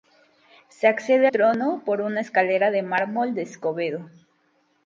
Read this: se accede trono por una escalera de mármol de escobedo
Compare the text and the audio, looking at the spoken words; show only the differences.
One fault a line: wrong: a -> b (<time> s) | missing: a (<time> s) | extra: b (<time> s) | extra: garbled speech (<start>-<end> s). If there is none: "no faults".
no faults